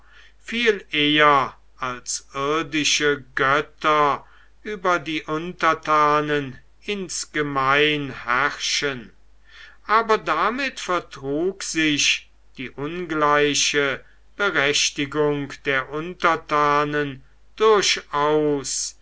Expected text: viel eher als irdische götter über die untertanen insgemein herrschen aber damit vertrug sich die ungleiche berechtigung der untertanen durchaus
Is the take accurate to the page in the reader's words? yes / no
yes